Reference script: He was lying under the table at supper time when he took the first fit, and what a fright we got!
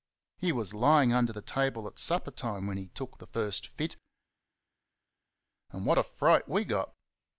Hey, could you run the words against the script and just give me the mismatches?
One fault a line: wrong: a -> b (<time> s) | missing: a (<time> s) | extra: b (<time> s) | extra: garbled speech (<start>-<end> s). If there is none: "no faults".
no faults